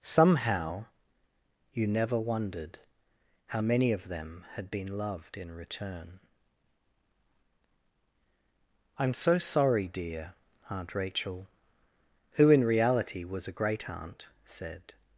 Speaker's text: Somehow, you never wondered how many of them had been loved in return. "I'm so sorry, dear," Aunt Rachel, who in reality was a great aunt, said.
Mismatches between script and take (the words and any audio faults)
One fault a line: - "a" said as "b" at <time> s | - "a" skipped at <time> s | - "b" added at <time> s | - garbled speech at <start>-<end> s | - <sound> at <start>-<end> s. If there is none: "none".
none